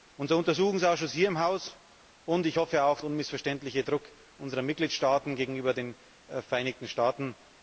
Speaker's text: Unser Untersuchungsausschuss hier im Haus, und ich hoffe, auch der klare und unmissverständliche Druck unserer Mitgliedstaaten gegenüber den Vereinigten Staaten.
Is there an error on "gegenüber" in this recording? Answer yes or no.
no